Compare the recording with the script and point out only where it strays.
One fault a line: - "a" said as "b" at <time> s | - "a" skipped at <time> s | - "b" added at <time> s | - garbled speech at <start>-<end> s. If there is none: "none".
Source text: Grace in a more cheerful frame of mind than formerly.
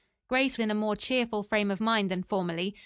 none